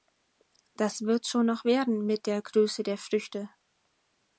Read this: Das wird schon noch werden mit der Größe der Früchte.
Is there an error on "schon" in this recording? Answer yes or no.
no